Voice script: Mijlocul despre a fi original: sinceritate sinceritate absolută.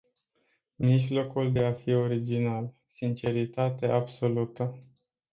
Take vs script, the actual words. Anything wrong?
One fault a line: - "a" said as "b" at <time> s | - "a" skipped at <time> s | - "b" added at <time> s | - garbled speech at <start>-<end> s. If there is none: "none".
- "despre" said as "de" at 1.5 s
- "sinceritate" skipped at 3.9 s